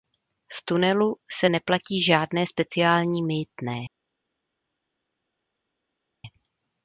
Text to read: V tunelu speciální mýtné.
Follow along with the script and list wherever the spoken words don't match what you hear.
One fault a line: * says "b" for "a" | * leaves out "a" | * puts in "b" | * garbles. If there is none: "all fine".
* puts in "se neplatí žádné"